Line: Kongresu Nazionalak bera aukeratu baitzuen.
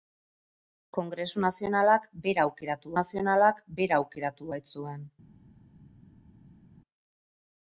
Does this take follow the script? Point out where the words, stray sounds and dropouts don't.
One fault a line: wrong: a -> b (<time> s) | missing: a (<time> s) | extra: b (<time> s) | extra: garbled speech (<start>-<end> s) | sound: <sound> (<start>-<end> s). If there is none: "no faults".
extra: Nazionalak bera aukeratu (3.0 s)